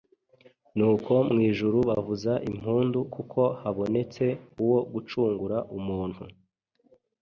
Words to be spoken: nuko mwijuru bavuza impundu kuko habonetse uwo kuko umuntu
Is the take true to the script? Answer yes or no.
no